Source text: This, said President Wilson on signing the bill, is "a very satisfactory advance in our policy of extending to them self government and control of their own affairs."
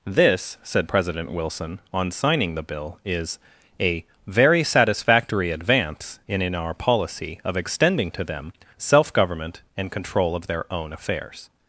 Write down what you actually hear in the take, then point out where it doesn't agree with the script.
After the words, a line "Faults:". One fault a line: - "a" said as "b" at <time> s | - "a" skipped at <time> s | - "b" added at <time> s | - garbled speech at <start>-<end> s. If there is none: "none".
This, said President Wilson on signing the bill, is "a very satisfactory advance in in our policy of extending to them self government and control of their own affairs."
Faults:
- "in" added at 6.4 s